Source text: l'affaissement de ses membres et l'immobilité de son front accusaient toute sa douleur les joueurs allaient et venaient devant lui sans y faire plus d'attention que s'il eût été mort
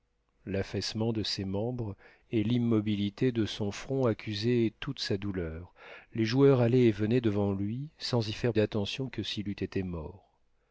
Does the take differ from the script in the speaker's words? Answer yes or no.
yes